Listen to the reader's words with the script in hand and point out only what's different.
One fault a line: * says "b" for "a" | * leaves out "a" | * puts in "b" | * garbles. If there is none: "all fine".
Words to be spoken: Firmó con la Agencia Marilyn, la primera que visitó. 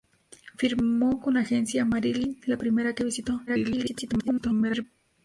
* garbles